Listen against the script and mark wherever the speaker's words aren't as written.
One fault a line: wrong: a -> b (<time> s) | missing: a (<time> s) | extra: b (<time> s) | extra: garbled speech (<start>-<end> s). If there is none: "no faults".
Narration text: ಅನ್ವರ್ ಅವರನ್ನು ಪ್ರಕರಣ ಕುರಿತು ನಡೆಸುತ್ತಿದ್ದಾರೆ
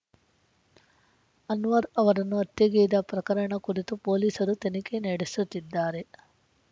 extra: ಹತ್ಯೆಗೈದ (2.4 s)
extra: ಪೊಲೀಸರು ತನಿಖೆ (4.1 s)